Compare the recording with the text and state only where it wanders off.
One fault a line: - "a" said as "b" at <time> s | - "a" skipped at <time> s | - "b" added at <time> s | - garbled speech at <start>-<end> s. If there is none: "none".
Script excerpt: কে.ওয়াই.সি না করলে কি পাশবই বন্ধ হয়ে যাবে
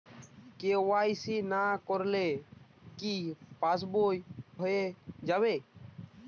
- "বন্ধ" skipped at 4.2 s